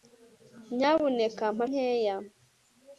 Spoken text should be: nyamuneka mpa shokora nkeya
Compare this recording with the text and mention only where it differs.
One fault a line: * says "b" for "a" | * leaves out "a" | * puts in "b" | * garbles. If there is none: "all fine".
* leaves out "shokora"